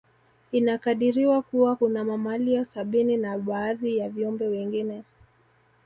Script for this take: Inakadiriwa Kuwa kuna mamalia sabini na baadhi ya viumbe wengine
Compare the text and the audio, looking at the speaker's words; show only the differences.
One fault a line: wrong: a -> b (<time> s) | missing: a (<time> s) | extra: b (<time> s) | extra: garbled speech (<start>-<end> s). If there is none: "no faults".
no faults